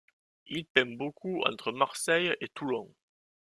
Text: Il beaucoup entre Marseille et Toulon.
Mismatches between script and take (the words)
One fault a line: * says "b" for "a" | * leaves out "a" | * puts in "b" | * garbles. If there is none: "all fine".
* puts in "peint"